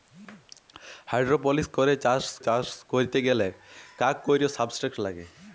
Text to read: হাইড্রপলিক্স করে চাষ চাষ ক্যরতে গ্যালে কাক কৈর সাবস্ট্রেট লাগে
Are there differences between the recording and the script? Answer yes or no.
no